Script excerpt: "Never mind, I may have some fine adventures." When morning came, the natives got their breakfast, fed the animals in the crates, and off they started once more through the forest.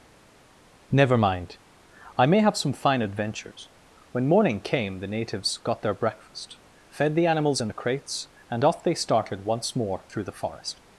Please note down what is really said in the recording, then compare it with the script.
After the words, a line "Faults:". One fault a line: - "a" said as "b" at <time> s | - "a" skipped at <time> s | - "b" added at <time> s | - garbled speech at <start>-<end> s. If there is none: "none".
"Never mind, I may have some fine adventures." When morning came, the natives got their breakfast, fed the animals in the crates, and off they started once more through the forest.
Faults:
none